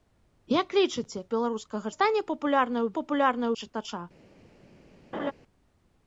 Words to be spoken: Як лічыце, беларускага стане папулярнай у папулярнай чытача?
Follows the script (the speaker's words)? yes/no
yes